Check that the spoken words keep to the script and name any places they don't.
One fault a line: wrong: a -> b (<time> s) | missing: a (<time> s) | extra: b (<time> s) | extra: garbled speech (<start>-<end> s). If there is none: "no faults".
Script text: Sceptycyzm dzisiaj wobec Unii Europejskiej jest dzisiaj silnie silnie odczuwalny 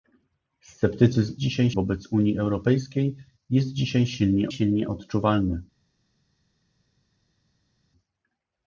no faults